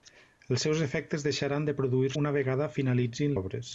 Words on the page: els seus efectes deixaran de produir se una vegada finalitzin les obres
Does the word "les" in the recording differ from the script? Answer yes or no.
yes